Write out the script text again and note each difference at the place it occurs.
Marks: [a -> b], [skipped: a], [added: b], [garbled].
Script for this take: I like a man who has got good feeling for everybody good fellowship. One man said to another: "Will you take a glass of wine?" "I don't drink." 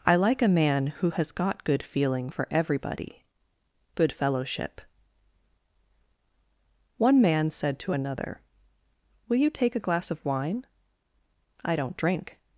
I like a man who has got good feeling for everybody good fellowship. One man said to another: "Will you take a glass of wine?" "I don't drink."